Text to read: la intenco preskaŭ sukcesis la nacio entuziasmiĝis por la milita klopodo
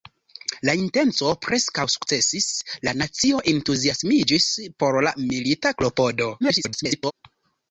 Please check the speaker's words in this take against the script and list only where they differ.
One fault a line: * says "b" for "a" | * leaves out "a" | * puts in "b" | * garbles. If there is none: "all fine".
* garbles